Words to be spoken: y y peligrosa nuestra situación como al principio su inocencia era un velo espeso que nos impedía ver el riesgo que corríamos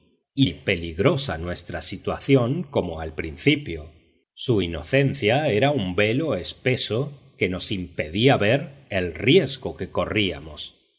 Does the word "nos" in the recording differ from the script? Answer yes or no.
no